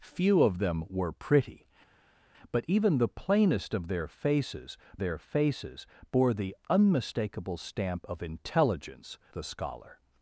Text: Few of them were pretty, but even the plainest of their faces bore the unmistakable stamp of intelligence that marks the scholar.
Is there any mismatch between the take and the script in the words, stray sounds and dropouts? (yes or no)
yes